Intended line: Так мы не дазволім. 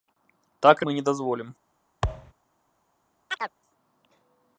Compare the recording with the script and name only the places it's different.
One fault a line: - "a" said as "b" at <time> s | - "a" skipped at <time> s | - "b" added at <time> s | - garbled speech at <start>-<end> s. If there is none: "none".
none